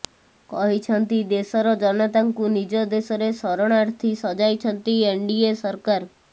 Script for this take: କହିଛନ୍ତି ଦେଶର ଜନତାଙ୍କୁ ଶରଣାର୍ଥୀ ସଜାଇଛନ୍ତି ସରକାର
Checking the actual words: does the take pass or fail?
fail